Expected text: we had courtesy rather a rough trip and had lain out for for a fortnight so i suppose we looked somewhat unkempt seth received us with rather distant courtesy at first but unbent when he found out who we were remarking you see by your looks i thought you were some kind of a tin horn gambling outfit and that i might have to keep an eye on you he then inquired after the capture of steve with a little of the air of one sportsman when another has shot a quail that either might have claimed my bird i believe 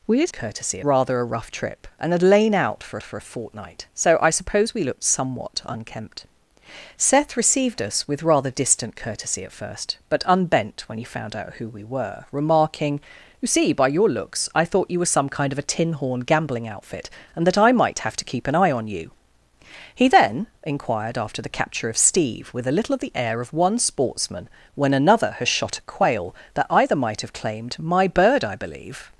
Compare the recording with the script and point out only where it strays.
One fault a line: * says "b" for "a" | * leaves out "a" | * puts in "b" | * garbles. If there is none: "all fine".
all fine